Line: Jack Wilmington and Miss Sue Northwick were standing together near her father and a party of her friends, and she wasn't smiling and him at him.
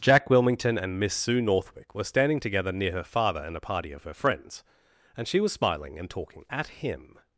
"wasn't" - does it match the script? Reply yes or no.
no